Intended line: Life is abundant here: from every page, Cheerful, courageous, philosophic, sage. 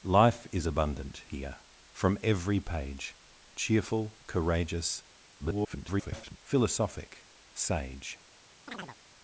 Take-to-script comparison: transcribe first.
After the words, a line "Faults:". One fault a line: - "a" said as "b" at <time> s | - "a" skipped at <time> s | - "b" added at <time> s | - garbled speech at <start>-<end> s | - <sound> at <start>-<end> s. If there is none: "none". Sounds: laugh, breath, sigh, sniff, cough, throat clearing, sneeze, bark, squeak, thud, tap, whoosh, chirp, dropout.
Life is abundant here: from every page, Cheerful, courageous, [garbled] philosophic, sage.
Faults:
- garbled speech at 5.4-6.4 s
- chirp at 8.7-9.0 s